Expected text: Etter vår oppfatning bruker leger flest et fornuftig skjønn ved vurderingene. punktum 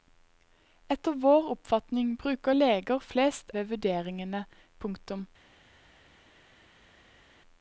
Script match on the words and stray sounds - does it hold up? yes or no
no